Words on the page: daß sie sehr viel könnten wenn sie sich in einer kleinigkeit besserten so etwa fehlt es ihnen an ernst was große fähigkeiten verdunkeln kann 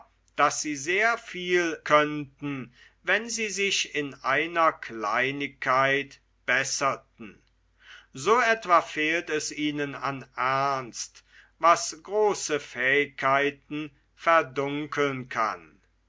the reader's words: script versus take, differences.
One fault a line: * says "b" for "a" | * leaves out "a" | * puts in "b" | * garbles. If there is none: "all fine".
all fine